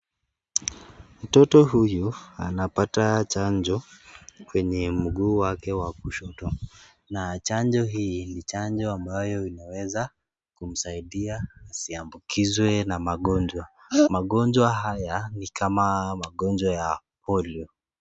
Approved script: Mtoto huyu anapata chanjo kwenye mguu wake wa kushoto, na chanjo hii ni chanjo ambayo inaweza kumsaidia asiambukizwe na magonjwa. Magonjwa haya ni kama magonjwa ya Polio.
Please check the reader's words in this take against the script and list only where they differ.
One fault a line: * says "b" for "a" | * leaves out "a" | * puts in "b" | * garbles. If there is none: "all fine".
all fine